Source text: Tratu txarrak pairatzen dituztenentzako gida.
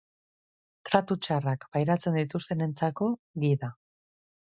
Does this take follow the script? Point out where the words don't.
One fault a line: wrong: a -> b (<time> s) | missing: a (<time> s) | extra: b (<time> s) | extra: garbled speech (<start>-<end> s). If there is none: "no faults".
no faults